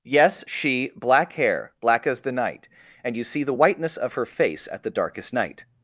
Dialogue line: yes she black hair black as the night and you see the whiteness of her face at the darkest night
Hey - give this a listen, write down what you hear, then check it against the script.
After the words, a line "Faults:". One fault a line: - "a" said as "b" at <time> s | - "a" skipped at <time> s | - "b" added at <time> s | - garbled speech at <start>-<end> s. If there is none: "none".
yes she black hair black as the night and you see the whiteness of her face at the darkest night
Faults:
none